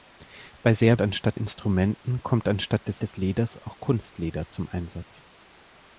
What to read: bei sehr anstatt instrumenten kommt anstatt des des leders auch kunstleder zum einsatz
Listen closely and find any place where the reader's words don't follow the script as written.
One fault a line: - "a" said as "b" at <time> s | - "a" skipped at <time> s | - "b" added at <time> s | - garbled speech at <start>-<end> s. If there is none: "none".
none